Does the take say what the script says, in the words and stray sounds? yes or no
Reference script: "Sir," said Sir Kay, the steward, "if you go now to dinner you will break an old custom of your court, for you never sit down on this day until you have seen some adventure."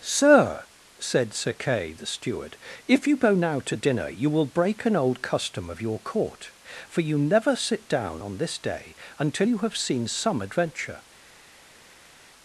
yes